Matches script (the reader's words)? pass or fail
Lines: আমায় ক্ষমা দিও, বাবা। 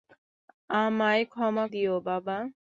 pass